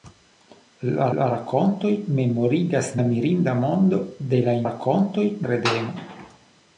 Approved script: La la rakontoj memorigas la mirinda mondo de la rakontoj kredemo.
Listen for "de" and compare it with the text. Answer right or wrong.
right